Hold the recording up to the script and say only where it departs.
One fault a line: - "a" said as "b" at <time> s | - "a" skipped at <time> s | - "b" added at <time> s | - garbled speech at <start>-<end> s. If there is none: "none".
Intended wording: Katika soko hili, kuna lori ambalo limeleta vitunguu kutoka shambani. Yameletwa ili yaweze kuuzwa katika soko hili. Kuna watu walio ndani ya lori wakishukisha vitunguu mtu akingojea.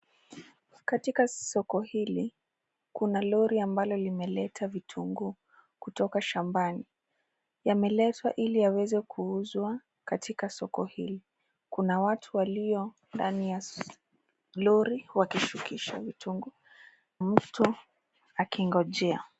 none